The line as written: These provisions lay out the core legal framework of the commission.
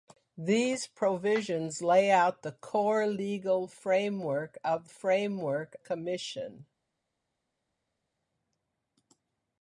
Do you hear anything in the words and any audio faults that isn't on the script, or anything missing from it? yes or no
yes